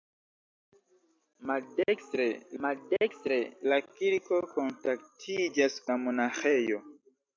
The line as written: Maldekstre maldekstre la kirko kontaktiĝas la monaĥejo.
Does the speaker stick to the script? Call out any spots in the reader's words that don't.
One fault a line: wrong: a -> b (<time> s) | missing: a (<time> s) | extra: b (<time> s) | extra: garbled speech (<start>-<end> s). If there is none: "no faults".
no faults